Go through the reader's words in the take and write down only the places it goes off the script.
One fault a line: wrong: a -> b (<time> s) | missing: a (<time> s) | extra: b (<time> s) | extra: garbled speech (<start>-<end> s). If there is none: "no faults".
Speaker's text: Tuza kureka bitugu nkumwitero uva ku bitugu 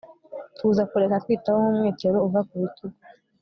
wrong: bitugu -> kwitaho (1.2 s)